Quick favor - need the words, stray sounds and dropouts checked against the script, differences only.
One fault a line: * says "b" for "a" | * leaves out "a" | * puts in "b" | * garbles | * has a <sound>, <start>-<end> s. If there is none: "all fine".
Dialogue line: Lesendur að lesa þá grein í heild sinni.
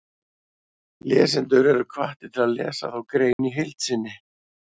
* puts in "eru hvattir til"
* has a dropout, 3.3-3.4 s